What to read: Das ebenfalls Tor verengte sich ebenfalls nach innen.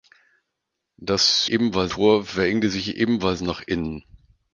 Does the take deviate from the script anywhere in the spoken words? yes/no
no